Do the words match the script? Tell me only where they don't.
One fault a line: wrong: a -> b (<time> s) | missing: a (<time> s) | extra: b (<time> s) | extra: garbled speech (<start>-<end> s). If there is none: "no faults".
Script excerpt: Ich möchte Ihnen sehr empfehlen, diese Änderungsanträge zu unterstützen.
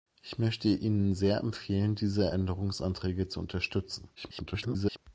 extra: garbled speech (4.2-5.0 s)